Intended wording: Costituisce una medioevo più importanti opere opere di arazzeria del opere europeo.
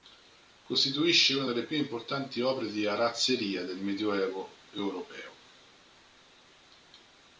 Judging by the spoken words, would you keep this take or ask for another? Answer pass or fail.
fail